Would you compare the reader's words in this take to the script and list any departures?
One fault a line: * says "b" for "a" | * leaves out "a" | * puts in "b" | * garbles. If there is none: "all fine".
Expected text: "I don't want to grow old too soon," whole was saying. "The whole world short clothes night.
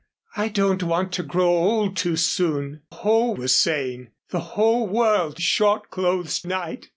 all fine